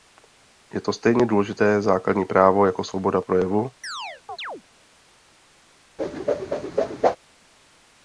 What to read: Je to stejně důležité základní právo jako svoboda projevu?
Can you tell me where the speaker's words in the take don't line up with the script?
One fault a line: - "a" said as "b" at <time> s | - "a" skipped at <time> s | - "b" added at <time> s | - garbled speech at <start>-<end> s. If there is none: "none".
none